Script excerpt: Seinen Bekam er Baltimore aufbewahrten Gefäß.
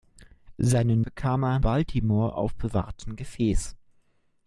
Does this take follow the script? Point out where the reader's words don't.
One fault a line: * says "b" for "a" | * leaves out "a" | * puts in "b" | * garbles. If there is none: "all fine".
all fine